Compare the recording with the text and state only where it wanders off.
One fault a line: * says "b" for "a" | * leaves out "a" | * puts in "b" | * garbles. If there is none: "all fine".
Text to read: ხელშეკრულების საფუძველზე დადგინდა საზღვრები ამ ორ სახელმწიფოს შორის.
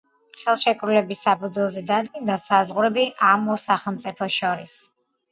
all fine